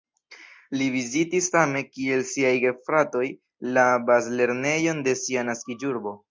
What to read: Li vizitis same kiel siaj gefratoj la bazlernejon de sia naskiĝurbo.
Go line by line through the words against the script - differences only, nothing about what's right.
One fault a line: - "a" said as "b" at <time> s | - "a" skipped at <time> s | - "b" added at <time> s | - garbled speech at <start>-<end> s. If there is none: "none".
none